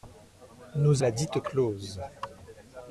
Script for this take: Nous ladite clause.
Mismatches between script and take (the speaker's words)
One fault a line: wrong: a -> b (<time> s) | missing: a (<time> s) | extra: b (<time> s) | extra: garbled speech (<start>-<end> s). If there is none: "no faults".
no faults